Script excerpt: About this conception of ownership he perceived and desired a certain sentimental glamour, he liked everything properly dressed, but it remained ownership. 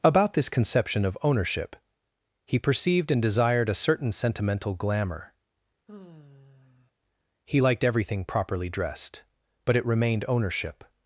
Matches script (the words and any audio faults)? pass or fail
fail